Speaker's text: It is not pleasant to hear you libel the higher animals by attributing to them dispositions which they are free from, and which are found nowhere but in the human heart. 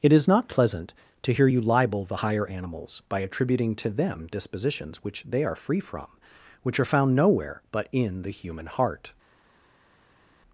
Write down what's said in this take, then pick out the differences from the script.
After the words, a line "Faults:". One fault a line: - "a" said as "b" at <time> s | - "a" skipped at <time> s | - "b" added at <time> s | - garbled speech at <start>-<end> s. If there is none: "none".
It is not pleasant to hear you libel the higher animals by attributing to them dispositions which they are free from, which are found nowhere but in the human heart.
Faults:
- "and" skipped at 6.1 s